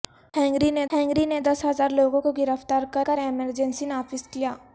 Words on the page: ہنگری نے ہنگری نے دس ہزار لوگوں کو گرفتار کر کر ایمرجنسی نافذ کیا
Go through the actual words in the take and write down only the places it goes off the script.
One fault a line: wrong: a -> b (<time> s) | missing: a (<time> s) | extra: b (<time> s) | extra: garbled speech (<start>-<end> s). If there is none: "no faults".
no faults